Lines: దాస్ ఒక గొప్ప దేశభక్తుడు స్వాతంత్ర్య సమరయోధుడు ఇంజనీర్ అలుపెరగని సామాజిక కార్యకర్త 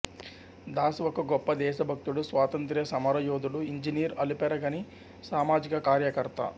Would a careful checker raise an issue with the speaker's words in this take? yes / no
no